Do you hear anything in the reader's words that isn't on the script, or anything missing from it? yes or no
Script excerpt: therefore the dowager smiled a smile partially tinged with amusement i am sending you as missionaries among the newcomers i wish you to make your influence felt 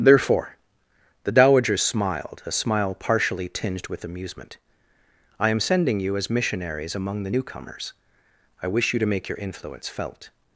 no